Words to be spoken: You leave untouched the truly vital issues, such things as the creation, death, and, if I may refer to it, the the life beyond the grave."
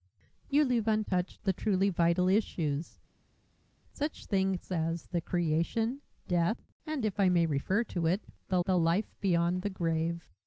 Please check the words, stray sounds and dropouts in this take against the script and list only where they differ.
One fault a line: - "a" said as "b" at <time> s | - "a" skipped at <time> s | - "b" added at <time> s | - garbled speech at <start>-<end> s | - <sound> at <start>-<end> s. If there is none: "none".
none